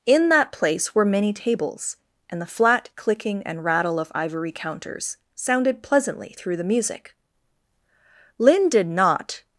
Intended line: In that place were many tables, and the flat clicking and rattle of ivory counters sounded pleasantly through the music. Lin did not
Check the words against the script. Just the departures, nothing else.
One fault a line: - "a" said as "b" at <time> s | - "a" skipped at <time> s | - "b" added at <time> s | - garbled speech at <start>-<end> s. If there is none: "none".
none